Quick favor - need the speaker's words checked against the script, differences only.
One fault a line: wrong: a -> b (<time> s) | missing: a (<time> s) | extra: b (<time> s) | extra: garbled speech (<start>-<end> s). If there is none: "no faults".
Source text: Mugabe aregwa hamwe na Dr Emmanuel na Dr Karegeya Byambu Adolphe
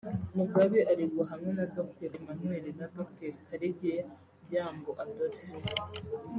no faults